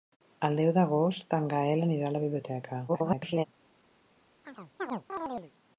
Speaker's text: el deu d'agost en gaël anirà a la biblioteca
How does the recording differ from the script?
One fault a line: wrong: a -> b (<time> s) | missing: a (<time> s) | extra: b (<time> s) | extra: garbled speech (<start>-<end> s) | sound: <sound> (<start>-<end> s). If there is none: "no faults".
extra: garbled speech (2.9-3.5 s)
sound: chirp (4.4-5.5 s)